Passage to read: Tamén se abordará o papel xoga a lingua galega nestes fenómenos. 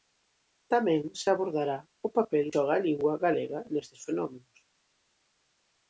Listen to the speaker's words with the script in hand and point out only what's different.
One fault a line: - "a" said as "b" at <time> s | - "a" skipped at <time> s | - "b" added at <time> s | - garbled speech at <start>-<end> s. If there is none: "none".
none